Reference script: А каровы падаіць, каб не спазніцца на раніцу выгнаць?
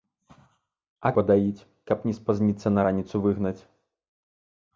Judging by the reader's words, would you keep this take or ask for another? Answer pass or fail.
fail